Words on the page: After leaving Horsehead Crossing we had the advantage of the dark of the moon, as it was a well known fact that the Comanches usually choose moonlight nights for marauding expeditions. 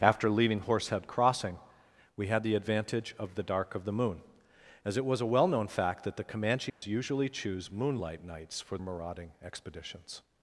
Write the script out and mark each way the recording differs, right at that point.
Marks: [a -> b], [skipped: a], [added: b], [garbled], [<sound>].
After leaving Horsehead Crossing we had the advantage of the dark of the moon, as it was a well known fact that the Comanches [dropout] usually choose moonlight nights for marauding expeditions.